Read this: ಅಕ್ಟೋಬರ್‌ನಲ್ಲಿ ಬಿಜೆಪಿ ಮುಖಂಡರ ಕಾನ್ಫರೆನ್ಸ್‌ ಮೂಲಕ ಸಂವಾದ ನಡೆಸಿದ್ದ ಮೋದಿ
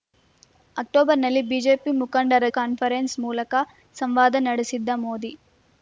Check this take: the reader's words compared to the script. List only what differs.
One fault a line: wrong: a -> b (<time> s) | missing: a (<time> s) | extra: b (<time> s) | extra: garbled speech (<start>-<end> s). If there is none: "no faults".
no faults